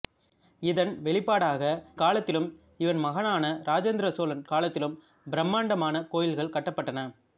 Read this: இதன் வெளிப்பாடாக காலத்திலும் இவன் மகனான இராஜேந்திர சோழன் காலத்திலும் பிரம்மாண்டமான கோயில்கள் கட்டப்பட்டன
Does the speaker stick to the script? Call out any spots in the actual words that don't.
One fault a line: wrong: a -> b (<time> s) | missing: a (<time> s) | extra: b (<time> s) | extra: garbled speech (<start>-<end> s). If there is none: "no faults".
no faults